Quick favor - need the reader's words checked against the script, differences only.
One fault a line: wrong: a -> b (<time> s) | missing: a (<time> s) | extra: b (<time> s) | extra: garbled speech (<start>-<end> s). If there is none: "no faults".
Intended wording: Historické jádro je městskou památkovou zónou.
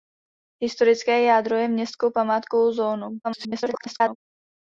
extra: garbled speech (3.2-4.2 s)